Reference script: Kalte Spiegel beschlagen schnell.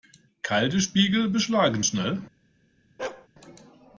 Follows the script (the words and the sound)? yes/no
no